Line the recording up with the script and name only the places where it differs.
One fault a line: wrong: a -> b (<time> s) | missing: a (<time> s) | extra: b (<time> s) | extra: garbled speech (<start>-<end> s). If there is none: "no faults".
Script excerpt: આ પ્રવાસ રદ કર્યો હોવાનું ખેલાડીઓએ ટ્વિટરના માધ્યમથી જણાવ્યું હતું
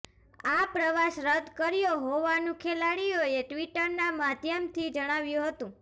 no faults